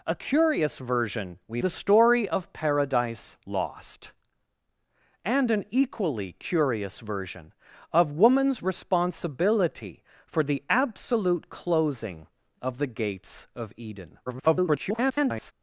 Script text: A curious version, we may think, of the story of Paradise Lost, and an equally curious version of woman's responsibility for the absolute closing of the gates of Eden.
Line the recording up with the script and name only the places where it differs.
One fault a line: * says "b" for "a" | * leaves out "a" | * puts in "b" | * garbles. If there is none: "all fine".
* leaves out "may think of"
* garbles